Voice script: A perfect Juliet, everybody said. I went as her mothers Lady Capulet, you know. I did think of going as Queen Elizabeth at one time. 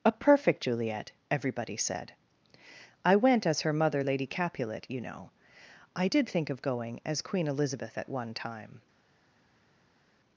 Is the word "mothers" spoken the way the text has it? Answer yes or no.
no